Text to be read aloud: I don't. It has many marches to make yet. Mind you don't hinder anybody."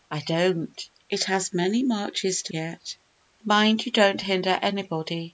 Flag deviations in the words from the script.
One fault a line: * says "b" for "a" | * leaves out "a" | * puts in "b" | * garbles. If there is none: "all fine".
* leaves out "make"